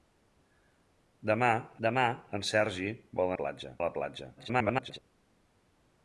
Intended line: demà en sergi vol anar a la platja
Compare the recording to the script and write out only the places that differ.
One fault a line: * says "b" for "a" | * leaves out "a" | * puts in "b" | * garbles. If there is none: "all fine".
* puts in "demà"
* says "platja" for "anar"
* garbles